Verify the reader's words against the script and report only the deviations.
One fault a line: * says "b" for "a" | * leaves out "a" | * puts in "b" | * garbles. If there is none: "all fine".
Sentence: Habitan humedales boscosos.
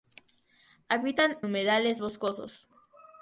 all fine